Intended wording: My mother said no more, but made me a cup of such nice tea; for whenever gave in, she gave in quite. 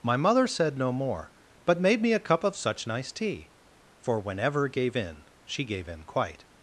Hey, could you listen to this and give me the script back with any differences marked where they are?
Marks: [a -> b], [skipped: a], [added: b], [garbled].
My mother said no more, but made me a cup of such nice tea; for whenever gave in, she gave in quite.